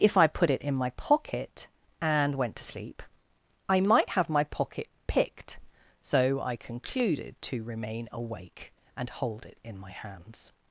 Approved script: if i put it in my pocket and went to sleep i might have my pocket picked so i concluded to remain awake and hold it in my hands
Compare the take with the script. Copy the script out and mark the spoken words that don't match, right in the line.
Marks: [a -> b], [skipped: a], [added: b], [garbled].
if i put it in my pocket and went to sleep i might have my pocket picked so i concluded to remain awake and hold it in my hands